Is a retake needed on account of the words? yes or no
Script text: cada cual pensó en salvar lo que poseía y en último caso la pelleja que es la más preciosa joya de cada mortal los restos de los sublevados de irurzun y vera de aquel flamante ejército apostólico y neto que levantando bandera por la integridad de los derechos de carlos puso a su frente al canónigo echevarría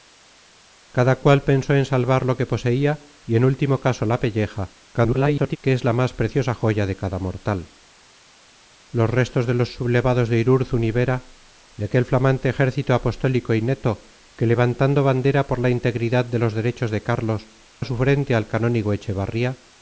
yes